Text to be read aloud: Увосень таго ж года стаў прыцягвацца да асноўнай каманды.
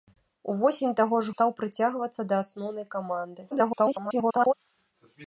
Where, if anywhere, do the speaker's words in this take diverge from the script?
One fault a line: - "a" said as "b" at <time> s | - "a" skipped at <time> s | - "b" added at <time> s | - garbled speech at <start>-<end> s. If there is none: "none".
- "года" skipped at 1.4 s
- garbled speech at 3.5-4.5 s